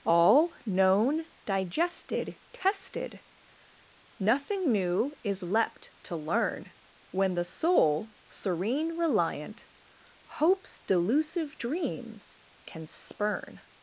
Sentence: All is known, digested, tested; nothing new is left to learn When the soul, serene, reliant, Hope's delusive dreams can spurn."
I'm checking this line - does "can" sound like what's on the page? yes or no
yes